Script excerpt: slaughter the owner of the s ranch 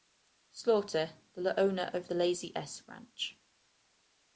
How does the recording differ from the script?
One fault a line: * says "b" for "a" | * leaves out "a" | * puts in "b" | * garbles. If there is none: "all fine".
* puts in "lazy"